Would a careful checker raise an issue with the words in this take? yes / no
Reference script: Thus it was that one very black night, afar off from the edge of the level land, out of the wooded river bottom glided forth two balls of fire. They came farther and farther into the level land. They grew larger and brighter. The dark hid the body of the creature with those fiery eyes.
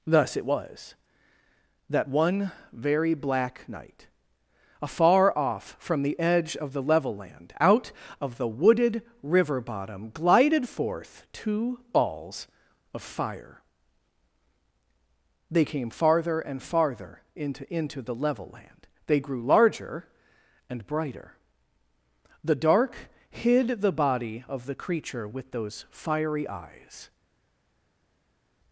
yes